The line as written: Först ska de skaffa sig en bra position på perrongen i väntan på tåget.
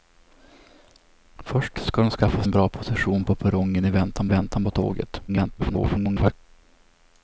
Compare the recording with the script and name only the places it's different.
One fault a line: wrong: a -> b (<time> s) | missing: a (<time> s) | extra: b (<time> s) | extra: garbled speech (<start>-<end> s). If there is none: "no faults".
missing: sig (2.4 s)
extra: väntan (4.3 s)
extra: garbled speech (5.3-6.3 s)